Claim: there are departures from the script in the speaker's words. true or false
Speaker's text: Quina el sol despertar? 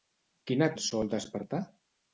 false